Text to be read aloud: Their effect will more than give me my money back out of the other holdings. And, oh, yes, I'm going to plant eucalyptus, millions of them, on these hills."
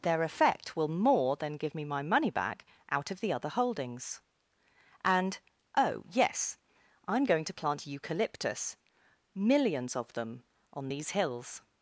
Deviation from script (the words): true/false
false